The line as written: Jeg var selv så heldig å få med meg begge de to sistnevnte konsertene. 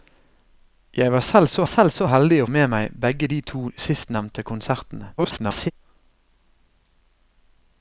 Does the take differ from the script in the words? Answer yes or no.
yes